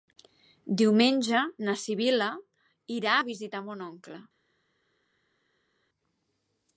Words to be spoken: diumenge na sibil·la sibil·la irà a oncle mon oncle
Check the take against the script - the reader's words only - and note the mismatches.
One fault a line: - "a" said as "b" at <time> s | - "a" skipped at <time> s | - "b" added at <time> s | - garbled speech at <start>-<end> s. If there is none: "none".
- "sibil·la" skipped at 2.3 s
- "oncle" said as "visitar" at 3.3 s